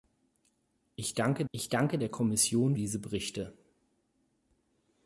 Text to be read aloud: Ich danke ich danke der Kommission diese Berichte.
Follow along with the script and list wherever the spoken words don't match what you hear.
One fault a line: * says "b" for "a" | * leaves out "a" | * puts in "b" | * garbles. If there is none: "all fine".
all fine